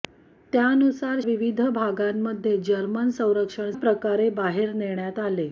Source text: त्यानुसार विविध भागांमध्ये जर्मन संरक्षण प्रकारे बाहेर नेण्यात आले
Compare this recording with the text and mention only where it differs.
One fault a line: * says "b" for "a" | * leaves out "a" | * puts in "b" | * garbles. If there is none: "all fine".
all fine